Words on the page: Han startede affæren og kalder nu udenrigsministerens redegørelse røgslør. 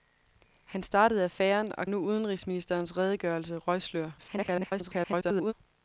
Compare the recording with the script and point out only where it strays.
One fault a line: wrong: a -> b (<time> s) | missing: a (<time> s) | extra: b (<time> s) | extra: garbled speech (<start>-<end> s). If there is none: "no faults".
missing: kalder (1.9 s)
extra: garbled speech (4.2-5.5 s)